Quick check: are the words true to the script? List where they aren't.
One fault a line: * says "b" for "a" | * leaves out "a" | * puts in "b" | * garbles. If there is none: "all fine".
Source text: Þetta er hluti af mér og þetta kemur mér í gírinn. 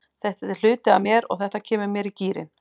all fine